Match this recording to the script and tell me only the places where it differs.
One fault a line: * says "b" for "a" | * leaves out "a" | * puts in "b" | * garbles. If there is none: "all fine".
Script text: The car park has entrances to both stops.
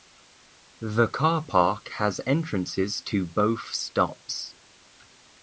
all fine